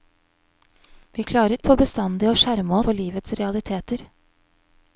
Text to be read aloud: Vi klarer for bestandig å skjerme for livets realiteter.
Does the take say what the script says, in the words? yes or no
yes